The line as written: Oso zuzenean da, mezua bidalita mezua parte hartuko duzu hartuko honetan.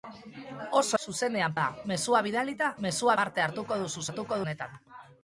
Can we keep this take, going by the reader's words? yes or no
yes